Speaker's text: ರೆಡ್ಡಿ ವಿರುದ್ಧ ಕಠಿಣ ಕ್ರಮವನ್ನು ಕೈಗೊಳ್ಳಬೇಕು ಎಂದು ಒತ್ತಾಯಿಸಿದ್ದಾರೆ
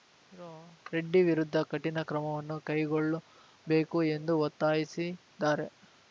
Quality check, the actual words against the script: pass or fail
pass